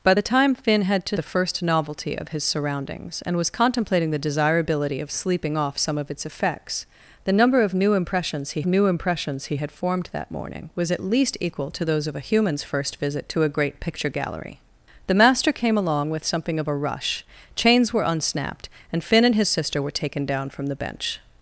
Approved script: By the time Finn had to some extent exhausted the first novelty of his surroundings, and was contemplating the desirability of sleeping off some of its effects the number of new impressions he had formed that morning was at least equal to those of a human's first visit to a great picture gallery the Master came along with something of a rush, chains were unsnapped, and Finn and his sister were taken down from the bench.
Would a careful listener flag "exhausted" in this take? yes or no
yes